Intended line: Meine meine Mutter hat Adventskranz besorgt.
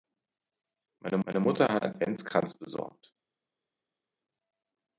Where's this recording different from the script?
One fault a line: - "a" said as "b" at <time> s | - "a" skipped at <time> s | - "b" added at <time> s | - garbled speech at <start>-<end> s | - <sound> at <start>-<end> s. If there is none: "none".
none